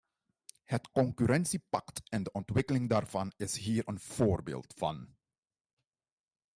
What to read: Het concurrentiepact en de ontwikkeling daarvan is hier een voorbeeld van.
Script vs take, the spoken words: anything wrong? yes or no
no